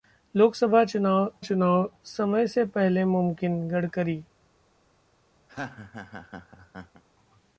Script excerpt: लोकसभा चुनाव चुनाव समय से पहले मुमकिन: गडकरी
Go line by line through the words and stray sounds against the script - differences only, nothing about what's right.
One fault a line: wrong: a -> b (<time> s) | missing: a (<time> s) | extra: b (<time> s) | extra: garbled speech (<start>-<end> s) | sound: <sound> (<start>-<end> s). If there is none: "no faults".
sound: laugh (5.5-7.0 s)